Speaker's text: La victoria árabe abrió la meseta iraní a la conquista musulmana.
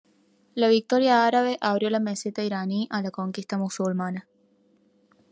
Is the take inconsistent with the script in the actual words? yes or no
no